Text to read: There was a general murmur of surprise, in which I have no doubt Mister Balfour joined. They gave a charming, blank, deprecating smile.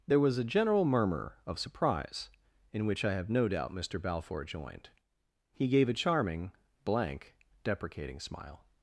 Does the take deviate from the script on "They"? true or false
true